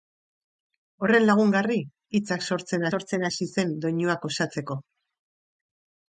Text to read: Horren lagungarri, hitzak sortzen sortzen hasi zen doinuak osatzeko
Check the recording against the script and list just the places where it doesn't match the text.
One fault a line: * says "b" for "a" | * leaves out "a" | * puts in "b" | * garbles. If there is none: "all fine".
all fine